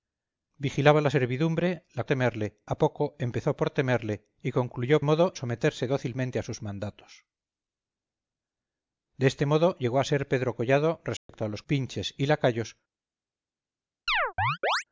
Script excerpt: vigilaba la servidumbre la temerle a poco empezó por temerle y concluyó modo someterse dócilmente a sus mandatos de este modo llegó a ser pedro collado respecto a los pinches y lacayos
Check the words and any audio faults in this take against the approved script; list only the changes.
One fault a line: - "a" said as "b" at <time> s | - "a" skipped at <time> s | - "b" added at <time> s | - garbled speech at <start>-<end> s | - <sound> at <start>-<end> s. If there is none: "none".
- dropout at 11.2-11.3 s
- chirp at 14.1-14.8 s